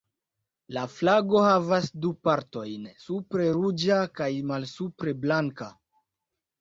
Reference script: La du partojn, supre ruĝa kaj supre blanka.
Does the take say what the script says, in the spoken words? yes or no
no